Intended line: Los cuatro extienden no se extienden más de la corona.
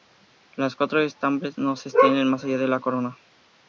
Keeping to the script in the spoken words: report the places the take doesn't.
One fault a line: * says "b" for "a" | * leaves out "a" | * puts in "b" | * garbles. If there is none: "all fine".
* says "estambres" for "extienden"
* puts in "allá"